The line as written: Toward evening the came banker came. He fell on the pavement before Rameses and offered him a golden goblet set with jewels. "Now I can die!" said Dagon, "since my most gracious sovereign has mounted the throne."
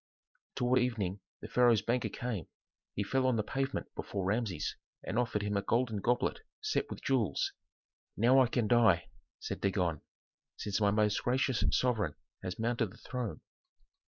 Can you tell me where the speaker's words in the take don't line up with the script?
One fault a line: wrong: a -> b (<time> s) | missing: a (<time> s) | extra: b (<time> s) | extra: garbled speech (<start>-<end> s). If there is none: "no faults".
wrong: came -> pharaoh's (1.5 s)